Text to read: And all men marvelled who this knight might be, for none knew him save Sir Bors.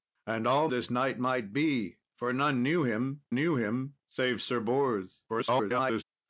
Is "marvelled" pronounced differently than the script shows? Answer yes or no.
yes